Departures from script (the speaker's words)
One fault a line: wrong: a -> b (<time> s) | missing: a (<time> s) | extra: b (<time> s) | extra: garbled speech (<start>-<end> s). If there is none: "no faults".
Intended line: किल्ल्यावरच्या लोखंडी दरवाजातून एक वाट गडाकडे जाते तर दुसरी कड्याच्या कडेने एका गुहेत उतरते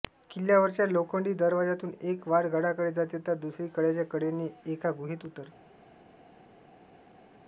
no faults